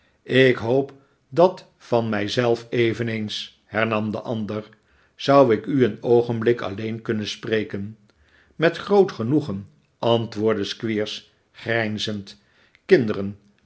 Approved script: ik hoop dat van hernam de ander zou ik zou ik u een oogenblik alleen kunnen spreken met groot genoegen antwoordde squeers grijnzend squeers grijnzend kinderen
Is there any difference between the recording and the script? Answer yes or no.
yes